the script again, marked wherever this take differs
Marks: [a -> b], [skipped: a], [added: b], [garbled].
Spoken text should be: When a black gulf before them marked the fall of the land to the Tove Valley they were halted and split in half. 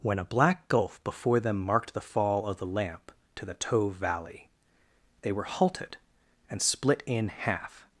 When a black gulf before them marked the fall of the [land -> lamp] to the Tove Valley they were halted and split in half.